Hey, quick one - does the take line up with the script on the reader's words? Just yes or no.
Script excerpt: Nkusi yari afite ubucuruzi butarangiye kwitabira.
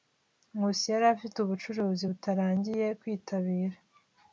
yes